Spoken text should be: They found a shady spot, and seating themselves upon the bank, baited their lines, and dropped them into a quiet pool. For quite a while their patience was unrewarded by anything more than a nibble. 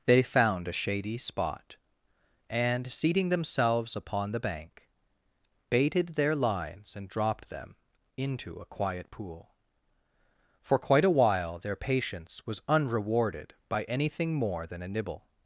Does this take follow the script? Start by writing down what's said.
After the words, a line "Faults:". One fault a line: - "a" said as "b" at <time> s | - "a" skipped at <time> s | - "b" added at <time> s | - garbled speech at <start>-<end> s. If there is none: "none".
They found a shady spot, and seating themselves upon the bank, baited their lines, and dropped them into a quiet pool. For quite a while their patience was unrewarded by anything more than a nibble.
Faults:
none